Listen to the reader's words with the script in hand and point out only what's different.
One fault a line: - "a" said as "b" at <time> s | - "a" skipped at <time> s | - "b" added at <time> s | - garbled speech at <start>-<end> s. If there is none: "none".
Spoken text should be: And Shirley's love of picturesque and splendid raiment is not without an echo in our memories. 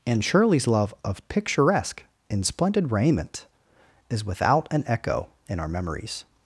- "and" said as "in" at 2.3 s
- "not" skipped at 4.2 s